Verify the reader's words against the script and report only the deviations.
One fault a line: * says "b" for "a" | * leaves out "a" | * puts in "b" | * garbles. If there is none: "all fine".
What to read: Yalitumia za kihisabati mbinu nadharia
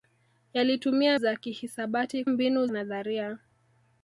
all fine